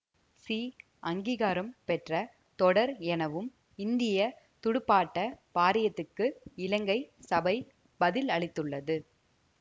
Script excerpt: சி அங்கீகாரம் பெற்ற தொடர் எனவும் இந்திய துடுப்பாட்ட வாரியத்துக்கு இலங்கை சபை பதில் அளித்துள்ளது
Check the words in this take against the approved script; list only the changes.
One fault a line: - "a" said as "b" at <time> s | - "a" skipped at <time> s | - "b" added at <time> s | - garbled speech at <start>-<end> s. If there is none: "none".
none